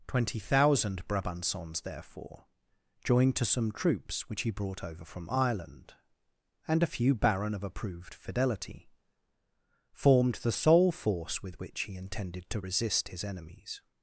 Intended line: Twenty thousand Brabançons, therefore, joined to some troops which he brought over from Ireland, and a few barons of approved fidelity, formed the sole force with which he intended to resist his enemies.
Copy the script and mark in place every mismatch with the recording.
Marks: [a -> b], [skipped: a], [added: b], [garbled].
Twenty thousand Brabançons, therefore, joined to some troops which he brought over from Ireland, and a few [barons -> baron] of approved fidelity, formed the sole force with which he intended to resist his enemies.